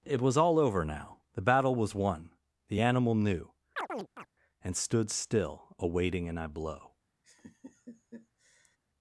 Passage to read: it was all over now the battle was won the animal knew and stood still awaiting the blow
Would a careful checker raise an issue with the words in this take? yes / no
yes